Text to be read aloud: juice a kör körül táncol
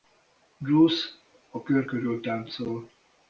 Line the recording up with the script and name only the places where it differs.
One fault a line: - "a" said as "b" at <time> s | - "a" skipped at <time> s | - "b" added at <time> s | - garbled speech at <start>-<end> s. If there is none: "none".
none